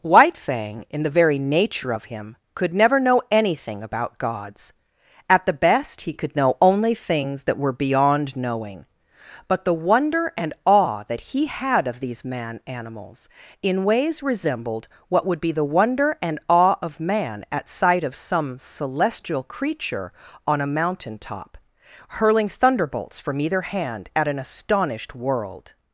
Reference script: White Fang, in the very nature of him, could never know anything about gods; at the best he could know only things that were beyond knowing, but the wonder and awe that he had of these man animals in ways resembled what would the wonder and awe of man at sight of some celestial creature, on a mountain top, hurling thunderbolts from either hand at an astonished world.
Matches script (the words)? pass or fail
fail